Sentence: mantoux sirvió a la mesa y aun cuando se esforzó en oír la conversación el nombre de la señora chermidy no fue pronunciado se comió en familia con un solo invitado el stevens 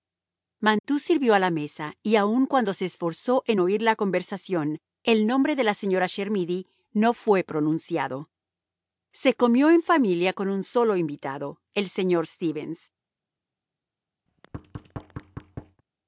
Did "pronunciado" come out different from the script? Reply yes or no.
no